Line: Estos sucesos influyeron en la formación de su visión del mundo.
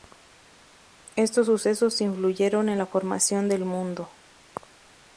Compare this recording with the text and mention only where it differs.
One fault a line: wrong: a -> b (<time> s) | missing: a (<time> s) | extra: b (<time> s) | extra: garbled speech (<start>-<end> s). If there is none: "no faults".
missing: de su visión (3.5 s)